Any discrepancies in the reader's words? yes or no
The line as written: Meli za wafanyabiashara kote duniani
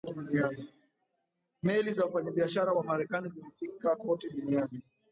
yes